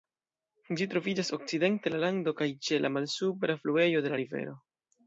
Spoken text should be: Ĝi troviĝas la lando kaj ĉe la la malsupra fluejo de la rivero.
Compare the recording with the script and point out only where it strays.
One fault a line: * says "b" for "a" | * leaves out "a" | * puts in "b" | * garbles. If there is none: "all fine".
* puts in "okcidente"
* leaves out "la"